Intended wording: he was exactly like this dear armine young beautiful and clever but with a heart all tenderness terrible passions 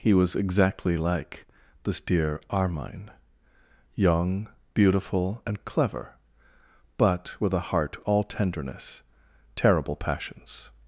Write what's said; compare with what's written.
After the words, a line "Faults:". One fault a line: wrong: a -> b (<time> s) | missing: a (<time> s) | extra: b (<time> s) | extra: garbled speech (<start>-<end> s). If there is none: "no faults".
he was exactly like this dear armine young beautiful and clever but with a heart all tenderness terrible passions
Faults:
no faults